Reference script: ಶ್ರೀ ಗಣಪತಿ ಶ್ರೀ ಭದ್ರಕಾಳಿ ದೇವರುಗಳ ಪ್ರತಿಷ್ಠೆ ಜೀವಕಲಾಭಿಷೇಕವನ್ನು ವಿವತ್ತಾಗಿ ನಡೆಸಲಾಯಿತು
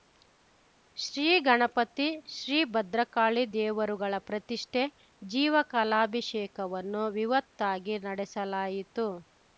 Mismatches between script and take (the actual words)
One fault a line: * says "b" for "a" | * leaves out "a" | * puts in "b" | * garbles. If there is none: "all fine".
all fine